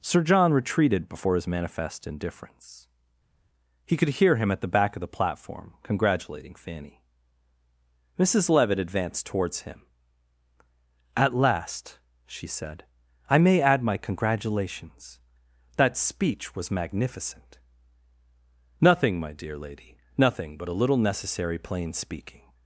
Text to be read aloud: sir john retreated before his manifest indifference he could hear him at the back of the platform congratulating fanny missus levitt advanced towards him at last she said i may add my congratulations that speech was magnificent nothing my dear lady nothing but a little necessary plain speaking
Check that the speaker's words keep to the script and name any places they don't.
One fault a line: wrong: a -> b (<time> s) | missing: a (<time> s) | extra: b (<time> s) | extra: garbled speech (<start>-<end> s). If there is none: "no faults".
no faults